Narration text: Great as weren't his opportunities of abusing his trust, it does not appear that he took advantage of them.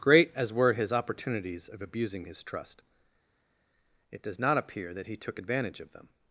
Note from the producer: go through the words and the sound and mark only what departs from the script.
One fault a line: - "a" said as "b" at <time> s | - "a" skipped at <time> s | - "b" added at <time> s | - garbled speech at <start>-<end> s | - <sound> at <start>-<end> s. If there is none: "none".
- "weren't" said as "were" at 0.5 s